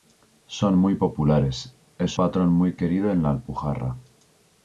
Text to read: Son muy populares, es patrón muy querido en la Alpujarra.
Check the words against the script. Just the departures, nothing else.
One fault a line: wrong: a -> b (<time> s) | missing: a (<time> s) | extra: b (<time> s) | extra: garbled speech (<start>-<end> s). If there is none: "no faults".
no faults